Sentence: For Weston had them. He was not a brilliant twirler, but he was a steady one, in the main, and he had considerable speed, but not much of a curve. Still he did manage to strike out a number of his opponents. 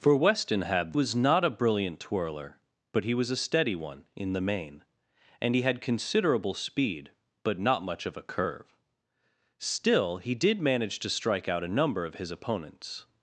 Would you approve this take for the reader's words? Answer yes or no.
no